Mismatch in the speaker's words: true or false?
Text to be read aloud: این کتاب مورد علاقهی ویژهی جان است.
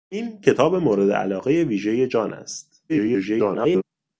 true